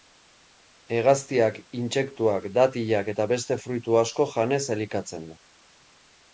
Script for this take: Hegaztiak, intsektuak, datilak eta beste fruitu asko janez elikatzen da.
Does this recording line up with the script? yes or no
yes